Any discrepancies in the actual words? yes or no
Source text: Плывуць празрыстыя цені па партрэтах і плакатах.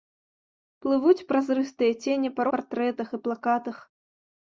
no